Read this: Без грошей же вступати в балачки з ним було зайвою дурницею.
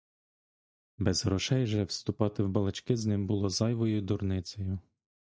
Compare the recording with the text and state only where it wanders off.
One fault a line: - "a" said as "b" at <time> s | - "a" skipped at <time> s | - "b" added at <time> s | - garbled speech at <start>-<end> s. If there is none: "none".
none